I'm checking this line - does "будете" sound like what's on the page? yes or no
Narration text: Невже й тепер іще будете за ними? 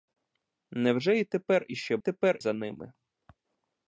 no